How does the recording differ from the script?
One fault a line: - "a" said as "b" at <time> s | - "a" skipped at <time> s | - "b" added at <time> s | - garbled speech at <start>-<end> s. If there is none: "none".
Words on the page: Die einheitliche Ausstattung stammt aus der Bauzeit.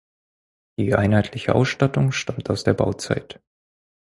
none